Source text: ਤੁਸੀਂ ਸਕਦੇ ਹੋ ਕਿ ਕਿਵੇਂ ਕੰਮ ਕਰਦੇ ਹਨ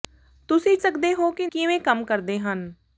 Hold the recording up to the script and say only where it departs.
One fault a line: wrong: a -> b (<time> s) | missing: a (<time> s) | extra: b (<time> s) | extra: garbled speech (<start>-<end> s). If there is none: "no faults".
no faults